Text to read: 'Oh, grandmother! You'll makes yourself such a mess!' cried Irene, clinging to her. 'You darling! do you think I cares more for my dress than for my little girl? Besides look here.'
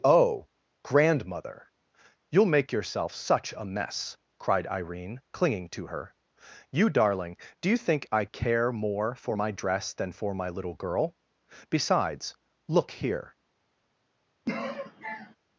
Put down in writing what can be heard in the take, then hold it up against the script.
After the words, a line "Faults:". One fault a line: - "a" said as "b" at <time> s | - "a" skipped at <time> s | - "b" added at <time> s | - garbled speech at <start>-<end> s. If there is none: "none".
'Oh, grandmother! You'll make yourself such a mess!' cried Irene, clinging to her. 'You darling! do you think I care more for my dress than for my little girl? Besides look here.'
Faults:
- "makes" said as "make" at 2.5 s
- "cares" said as "care" at 8.2 s